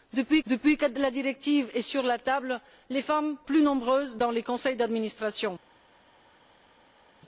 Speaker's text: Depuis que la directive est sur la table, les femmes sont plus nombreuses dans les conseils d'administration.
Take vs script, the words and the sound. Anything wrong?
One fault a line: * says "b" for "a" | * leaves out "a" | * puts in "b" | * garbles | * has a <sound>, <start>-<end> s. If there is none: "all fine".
* puts in "depuis"
* leaves out "sont"